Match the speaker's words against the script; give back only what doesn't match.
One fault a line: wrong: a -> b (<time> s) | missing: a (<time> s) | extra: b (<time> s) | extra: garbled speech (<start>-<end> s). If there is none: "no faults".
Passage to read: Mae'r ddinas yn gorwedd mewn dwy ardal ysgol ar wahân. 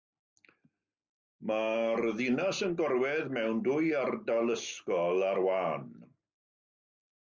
no faults